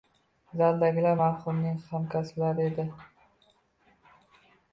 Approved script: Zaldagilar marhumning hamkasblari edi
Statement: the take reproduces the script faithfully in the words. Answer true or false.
true